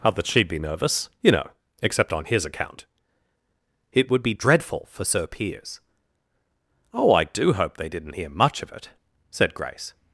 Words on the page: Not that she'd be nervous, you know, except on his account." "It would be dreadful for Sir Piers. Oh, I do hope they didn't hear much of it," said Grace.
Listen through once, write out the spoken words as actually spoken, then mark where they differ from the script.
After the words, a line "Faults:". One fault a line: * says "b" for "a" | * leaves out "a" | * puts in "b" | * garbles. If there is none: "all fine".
Not that she'd be nervous, you know, except on his account." "It would be dreadful for Sir Piers. Oh, I do hope they didn't hear much of it," said Grace.
Faults:
all fine